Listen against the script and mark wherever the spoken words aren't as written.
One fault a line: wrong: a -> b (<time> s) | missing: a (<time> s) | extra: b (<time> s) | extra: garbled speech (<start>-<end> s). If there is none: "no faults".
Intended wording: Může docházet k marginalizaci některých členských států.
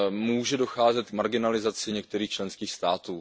no faults